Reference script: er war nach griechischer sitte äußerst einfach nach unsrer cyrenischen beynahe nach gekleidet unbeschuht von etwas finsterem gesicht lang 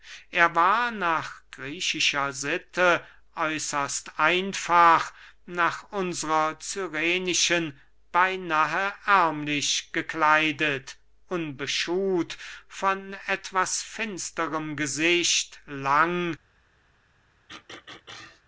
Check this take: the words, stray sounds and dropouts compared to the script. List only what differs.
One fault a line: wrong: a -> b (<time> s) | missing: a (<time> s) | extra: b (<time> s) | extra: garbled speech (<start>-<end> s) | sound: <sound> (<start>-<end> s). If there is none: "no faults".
wrong: nach -> ärmlich (9.1 s)
sound: throat clearing (17.5-18.4 s)